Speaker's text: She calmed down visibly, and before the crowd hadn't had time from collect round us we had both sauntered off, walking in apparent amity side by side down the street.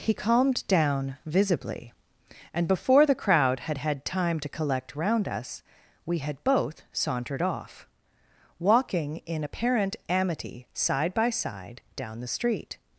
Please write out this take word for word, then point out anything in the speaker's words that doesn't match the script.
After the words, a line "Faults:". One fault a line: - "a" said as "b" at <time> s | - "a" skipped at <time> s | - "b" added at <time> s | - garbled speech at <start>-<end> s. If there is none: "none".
He calmed down visibly, and before the crowd had had time to collect round us we had both sauntered off, walking in apparent amity side by side down the street.
Faults:
- "She" said as "He" at 0.0 s
- "hadn't" said as "had" at 3.6 s
- "from" said as "to" at 4.4 s